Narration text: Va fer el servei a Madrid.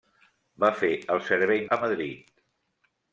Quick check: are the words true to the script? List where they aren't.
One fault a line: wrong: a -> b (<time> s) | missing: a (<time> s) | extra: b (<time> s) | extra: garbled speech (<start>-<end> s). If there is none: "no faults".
no faults